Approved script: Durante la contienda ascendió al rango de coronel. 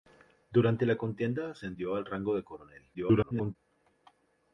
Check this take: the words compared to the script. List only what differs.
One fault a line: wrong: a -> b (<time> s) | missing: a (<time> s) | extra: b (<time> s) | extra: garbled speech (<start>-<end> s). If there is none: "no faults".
extra: garbled speech (2.9-3.6 s)